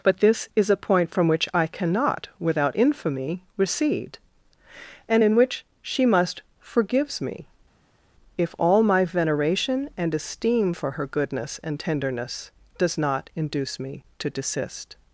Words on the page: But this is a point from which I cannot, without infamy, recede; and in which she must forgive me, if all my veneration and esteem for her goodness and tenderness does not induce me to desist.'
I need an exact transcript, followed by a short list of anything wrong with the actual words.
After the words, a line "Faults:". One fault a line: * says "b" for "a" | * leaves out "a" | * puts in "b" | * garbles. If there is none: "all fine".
But this is a point from which I cannot, without infamy, recede; and in which she must forgives me, if all my veneration and esteem for her goodness and tenderness does not induce me to desist.'
Faults:
* says "forgives" for "forgive"